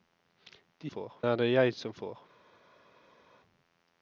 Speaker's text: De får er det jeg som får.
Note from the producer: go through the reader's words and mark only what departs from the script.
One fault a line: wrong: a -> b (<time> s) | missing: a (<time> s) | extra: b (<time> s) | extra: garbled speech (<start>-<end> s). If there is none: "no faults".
no faults